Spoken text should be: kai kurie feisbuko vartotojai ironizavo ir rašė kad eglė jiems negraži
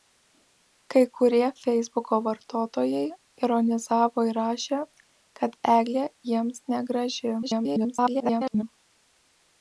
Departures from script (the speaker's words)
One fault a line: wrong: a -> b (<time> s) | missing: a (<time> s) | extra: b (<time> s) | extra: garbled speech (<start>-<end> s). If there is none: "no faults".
extra: garbled speech (7.4-8.6 s)